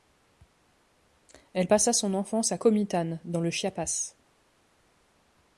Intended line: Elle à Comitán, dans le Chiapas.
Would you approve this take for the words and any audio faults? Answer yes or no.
no